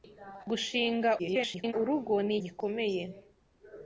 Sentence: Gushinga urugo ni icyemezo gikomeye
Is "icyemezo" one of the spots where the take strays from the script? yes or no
yes